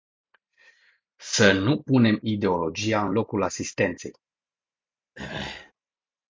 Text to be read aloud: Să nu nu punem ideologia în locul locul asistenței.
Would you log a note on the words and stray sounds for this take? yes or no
yes